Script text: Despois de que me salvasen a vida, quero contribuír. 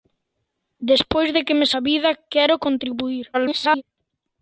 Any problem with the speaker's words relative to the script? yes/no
yes